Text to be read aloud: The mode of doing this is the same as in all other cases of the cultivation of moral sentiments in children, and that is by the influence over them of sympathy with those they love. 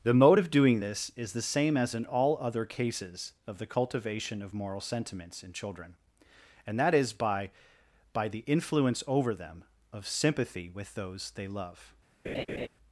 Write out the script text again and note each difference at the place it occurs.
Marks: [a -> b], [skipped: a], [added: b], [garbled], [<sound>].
The mode of doing this is the same as in all other cases of the cultivation of moral sentiments in children, and that is by [added: by] the influence over them of sympathy with those they love. [laugh]